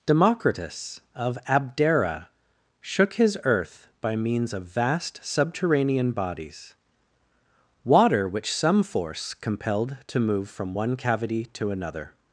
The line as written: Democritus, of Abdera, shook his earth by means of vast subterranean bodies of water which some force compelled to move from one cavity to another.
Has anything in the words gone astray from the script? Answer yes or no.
yes